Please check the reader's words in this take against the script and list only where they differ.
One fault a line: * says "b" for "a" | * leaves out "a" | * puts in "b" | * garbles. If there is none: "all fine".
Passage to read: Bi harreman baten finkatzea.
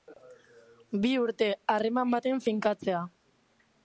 * puts in "urte"